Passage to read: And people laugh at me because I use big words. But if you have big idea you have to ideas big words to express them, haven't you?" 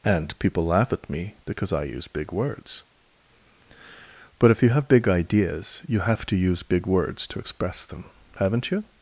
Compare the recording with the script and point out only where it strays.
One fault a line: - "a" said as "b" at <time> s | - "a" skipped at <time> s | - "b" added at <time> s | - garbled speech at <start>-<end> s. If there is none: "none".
- "idea" said as "ideas" at 5.1 s
- "ideas" said as "use" at 6.4 s